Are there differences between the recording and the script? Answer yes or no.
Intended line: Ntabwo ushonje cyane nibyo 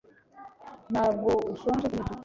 yes